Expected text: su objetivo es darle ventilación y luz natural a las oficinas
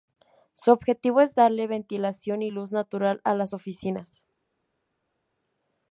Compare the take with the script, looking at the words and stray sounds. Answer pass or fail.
pass